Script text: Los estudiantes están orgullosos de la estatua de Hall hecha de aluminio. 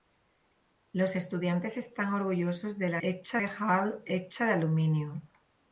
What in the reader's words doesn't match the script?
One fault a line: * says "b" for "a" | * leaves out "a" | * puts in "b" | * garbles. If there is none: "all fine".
* says "hecha" for "estatua"